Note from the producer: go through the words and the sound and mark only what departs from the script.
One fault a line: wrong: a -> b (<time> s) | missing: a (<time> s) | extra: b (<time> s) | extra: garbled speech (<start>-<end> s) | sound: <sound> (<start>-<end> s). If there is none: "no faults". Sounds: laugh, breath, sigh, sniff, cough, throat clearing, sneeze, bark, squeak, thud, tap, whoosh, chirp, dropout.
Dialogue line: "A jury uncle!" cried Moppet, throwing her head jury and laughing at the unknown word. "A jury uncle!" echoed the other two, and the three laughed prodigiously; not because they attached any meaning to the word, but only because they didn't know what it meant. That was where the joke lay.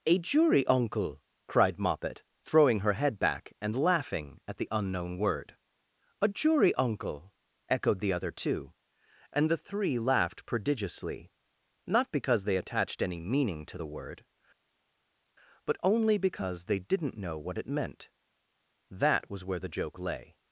wrong: jury -> back (3.2 s)